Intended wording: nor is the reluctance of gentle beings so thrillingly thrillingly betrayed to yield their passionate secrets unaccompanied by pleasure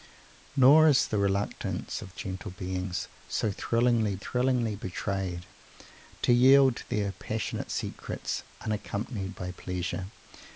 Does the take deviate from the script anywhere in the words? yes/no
no